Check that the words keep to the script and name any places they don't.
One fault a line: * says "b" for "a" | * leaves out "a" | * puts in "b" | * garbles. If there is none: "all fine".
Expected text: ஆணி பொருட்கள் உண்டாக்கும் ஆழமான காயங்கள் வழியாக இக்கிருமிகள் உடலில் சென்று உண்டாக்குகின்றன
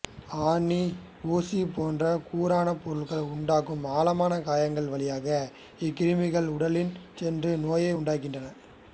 * puts in "ஊசி போன்ற கூரான"
* puts in "நோயை"